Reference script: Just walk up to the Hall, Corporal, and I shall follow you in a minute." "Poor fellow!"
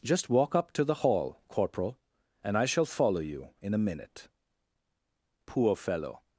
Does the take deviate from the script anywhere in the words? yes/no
no